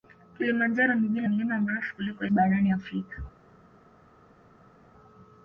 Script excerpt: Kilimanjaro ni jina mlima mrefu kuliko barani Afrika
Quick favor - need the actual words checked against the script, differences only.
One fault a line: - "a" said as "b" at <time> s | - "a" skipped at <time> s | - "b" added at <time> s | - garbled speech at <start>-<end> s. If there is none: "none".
none